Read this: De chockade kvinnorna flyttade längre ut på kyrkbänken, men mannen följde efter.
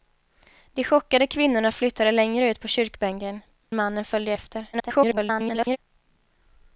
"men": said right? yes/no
no